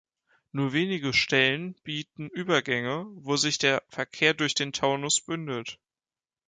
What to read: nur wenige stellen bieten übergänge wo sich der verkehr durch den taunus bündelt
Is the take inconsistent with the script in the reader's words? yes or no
no